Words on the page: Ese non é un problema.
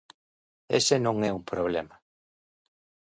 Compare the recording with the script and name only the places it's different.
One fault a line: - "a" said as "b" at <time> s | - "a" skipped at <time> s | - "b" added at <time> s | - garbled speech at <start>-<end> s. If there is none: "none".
none